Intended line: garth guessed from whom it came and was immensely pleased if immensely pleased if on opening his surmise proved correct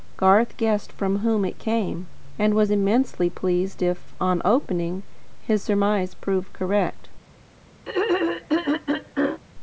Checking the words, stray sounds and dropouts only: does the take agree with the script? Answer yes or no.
no